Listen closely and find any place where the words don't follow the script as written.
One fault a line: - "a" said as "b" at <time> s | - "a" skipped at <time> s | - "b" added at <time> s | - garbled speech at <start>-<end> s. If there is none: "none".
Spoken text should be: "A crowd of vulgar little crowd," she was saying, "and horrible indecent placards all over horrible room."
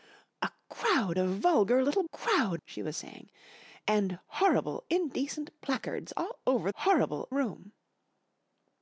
none